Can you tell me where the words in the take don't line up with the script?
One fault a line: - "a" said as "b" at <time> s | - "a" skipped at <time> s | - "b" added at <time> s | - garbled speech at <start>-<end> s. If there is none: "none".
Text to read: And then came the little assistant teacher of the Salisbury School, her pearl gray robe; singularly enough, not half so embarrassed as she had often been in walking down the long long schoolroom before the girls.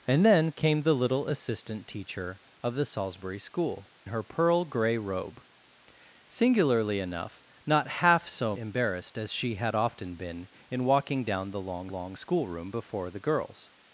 none